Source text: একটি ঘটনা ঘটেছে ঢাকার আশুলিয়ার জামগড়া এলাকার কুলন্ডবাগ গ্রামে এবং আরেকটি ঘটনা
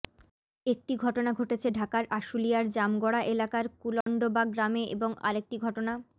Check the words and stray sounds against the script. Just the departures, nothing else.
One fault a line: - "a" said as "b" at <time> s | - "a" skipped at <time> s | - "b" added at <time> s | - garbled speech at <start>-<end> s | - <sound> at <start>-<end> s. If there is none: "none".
- dropout at 4.0-4.1 s